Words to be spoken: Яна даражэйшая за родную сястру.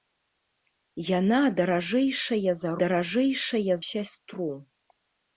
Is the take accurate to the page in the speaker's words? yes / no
no